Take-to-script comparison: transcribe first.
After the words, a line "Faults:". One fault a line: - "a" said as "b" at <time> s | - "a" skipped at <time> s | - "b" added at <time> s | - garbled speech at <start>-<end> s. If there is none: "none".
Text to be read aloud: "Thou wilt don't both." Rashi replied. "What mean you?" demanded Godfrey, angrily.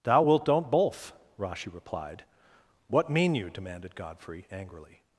"Thou wilt don't both." Rashi replied. "What mean you?" demanded Godfrey, angrily.
Faults:
none